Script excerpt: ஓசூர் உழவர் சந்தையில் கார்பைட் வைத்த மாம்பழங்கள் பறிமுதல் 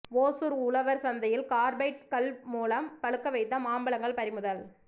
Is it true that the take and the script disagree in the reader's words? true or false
true